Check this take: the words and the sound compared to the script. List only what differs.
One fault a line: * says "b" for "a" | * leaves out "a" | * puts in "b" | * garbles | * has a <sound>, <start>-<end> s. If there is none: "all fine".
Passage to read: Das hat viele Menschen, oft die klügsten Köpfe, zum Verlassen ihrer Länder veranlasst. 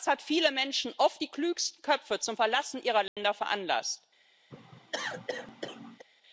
* has a dropout, 3.1-3.2 s
* has a cough, 4.5-6.1 s